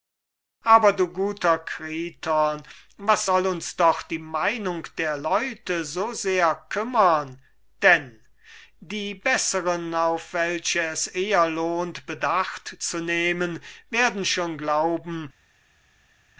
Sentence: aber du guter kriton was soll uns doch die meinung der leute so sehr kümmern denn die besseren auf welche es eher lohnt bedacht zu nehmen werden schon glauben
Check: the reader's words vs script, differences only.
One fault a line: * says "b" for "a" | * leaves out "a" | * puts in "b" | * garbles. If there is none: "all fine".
all fine